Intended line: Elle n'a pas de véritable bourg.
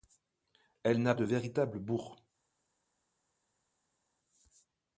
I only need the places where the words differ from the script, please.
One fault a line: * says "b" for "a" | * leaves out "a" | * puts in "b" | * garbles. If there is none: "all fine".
* leaves out "pas"